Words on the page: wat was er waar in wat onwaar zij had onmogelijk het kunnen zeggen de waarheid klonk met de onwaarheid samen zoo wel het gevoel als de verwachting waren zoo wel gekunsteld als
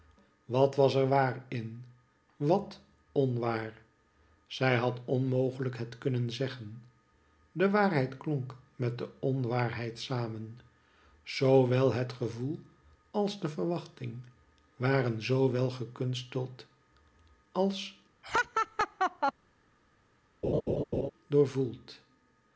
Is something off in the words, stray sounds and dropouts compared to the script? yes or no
yes